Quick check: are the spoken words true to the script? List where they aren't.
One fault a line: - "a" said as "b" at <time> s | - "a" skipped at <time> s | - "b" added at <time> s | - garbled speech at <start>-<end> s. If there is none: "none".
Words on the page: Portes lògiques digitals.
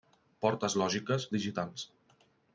none